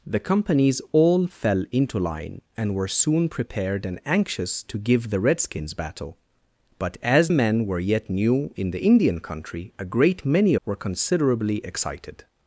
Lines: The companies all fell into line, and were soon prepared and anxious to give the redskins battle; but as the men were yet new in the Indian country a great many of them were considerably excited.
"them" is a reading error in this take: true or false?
true